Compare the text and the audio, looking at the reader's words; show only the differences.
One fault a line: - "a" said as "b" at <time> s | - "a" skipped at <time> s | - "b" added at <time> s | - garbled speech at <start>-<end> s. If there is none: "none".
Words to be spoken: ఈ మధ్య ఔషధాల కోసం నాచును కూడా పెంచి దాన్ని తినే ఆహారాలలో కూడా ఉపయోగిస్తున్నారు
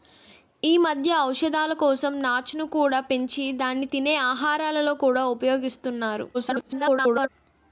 - garbled speech at 6.3-7.3 s